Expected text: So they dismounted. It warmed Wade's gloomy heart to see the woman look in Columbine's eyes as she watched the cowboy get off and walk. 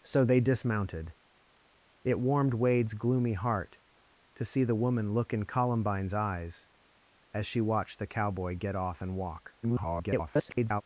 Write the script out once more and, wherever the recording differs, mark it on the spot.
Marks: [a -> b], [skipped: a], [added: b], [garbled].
So they dismounted. It warmed Wade's gloomy heart to see the woman look in Columbine's eyes as she watched the cowboy get off and walk. [garbled]